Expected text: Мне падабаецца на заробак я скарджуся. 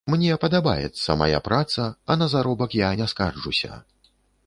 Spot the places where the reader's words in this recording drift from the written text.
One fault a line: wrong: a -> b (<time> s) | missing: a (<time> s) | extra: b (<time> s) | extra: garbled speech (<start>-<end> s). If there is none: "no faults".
extra: мая праца а (1.2 s)
extra: не (3.0 s)